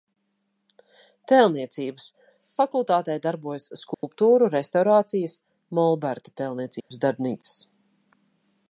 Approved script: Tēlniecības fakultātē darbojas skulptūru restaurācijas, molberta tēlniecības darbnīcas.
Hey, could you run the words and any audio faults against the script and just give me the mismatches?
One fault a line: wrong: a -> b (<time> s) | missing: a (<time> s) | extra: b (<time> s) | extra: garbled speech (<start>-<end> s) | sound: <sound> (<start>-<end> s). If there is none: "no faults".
sound: dropout (3.9-4.0 s)
sound: dropout (6.8-6.9 s)